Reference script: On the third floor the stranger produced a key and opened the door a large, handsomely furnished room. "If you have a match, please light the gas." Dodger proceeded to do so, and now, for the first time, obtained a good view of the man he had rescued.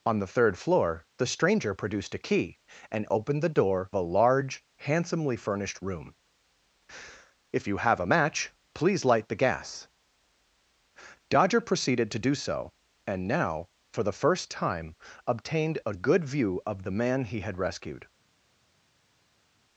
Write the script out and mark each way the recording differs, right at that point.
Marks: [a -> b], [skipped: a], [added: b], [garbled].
On the third floor the stranger produced a key and opened the door a large, handsomely furnished room. "If you have a match, please light the gas." Dodger proceeded to do so, and now, for the first time, obtained a good view of the man he had rescued.